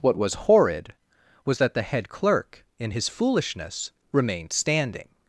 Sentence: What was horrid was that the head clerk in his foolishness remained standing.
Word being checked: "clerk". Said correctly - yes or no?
yes